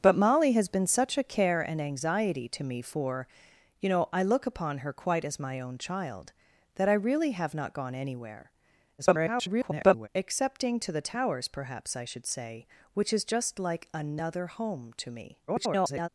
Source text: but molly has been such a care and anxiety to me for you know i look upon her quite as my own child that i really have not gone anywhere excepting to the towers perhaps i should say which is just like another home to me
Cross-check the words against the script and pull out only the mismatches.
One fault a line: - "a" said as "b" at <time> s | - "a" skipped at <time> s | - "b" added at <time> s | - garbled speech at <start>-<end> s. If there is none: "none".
- garbled speech at 9.0-10.1 s
- garbled speech at 15.5-16.1 s